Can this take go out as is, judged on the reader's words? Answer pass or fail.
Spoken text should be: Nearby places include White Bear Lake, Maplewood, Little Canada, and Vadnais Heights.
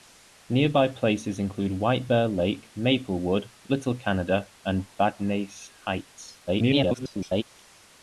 fail